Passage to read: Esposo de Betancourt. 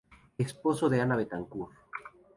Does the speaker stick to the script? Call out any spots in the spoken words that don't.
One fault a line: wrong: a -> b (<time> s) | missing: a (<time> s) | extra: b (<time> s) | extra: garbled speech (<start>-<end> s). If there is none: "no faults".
extra: Ana (1.0 s)